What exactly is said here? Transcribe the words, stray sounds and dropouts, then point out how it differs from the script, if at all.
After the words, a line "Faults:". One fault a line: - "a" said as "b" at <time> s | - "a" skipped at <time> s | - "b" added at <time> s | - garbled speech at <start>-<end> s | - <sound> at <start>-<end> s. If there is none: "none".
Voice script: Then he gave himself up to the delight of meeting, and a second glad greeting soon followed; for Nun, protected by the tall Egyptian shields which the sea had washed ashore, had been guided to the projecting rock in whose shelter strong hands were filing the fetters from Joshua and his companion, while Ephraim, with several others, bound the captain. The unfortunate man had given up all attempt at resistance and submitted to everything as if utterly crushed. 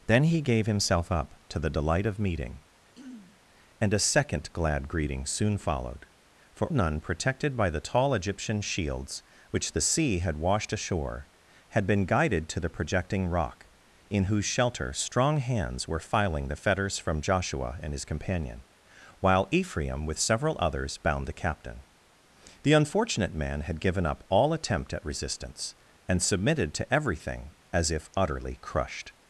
Then he gave himself up to the delight of meeting, and a second glad greeting soon followed; for Nun, protected by the tall Egyptian shields which the sea had washed ashore, had been guided to the projecting rock in whose shelter strong hands were filing the fetters from Joshua and his companion, while Ephraim, with several others, bound the captain. The unfortunate man had given up all attempt at resistance and submitted to everything as if utterly crushed.
Faults:
- throat clearing at 2.9-3.4 s